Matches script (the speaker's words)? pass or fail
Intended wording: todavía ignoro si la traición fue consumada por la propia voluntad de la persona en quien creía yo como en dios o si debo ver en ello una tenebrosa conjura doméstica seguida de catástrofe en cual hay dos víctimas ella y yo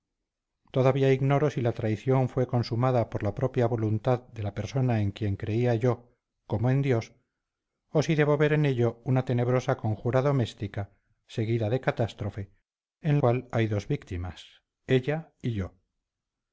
pass